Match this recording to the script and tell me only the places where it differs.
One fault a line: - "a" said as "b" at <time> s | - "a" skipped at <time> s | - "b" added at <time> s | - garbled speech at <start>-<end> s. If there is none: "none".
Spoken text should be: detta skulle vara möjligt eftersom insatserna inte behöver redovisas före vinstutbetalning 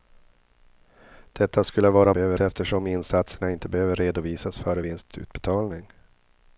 - "möjligt" said as "behöver" at 2.1 s